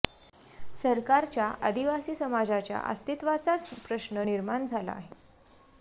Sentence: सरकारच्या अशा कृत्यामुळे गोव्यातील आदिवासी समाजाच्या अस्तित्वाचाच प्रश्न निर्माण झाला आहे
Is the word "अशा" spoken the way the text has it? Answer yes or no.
no